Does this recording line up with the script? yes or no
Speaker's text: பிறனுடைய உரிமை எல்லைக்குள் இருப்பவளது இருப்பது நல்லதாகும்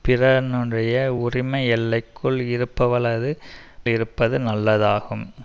yes